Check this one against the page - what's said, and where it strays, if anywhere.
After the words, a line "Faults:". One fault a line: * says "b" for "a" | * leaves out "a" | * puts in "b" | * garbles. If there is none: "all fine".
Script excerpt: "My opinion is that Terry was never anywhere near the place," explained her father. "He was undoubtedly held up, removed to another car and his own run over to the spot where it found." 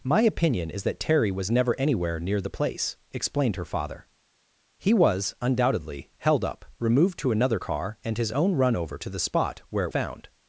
"My opinion is that Terry was never anywhere near the place," explained her father. "He was undoubtedly held up, removed to another car and his own run over to the spot where it found."
Faults:
all fine